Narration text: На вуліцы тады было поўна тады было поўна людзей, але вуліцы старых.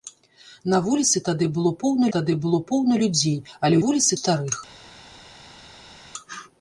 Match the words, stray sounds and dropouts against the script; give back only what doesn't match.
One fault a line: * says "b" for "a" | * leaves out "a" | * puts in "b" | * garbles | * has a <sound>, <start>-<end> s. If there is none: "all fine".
all fine